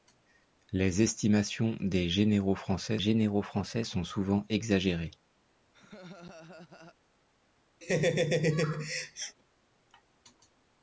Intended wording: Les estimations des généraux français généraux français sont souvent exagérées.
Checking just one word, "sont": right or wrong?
right